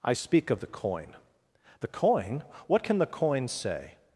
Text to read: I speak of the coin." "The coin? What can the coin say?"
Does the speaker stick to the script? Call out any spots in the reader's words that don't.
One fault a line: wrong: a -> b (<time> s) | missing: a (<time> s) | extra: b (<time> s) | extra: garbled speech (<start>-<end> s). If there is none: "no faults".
no faults